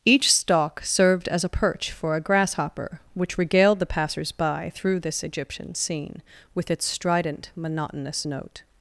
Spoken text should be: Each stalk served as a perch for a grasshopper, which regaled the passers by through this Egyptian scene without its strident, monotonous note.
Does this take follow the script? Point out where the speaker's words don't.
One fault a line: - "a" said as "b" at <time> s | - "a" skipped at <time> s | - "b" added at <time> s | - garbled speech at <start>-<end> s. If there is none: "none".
- "without" said as "with" at 6.5 s